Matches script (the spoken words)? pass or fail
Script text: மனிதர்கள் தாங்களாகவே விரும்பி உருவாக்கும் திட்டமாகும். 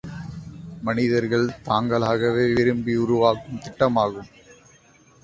pass